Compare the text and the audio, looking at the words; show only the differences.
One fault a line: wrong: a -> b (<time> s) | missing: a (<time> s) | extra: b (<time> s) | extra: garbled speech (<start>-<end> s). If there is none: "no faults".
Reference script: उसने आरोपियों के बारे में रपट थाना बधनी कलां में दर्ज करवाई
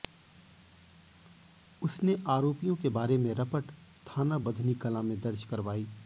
no faults